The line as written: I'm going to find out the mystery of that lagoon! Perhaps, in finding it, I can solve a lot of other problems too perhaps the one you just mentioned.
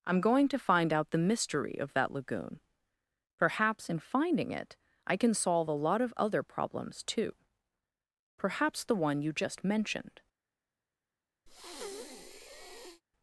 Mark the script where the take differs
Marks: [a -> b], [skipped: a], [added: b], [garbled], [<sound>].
I'm going to find out the mystery of that lagoon! Perhaps, in finding it, I can solve a lot of other problems too perhaps the one you just mentioned. [breath]